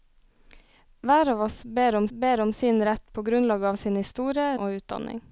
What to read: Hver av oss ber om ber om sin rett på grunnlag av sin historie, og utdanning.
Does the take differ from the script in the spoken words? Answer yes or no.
no